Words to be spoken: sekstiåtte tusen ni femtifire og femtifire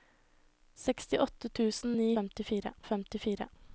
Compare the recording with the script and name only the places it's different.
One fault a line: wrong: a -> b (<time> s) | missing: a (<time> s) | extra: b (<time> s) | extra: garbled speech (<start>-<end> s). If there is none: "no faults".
no faults